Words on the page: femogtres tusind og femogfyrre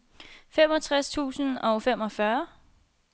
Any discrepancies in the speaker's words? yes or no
no